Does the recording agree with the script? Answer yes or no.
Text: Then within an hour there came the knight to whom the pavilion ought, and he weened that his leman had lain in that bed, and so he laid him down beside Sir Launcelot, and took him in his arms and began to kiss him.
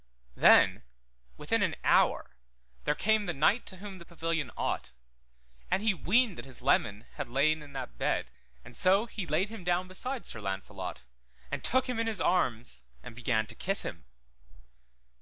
yes